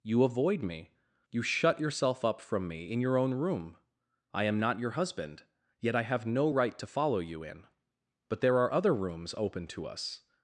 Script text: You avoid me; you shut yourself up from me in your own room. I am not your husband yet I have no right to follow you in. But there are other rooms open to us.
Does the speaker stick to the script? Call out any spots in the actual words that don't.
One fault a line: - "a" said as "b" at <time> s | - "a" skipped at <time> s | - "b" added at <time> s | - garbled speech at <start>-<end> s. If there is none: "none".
none